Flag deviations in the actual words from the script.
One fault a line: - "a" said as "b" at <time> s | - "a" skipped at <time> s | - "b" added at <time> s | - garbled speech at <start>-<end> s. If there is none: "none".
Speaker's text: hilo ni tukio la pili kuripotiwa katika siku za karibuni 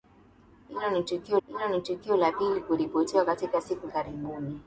- "hilo ni tukio" added at 1.5 s
- "za" skipped at 3.9 s